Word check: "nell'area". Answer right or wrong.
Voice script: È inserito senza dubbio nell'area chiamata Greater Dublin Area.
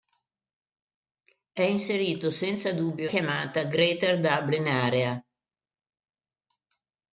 wrong